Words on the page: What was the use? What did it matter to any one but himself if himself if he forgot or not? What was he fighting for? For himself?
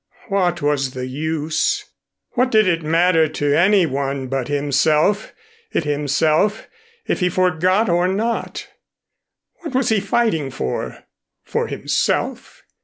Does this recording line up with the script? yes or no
yes